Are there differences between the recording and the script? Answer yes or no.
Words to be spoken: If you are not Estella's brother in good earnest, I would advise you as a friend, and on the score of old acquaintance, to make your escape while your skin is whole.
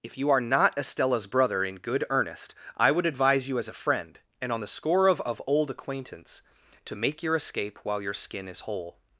yes